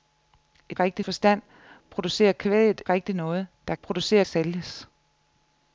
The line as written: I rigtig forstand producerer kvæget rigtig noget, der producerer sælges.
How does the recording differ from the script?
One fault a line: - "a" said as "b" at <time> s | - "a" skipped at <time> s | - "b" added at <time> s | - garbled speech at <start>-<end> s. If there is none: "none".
none